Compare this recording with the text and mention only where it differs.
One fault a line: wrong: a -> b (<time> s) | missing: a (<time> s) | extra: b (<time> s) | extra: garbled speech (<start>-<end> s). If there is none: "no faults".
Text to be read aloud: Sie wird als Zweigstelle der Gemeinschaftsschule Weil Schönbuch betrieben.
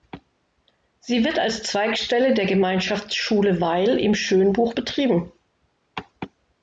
extra: im (4.0 s)